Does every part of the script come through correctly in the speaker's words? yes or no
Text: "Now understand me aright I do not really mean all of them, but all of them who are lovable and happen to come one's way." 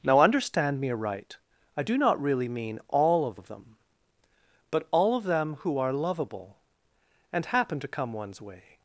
no